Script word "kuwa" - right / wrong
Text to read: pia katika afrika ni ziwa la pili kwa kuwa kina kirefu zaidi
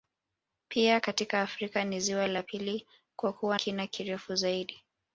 right